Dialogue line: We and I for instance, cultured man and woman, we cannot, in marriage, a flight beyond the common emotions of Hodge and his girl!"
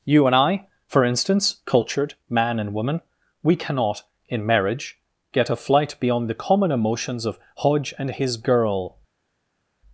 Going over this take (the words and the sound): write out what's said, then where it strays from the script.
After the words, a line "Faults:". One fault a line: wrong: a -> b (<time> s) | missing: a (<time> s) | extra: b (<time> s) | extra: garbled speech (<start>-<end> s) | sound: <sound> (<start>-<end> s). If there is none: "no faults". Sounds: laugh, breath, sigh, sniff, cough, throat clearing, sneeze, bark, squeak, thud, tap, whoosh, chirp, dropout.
You and I for instance, cultured man and woman, we cannot, in marriage, get a flight beyond the common emotions of Hodge and his girl!"
Faults:
wrong: We -> You (0.0 s)
extra: get (5.3 s)